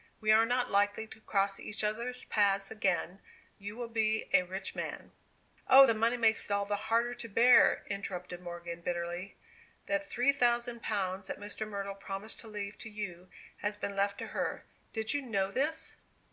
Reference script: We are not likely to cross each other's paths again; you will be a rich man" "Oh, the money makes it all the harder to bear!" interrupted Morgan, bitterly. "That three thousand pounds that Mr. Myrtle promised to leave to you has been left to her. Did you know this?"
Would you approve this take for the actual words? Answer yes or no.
yes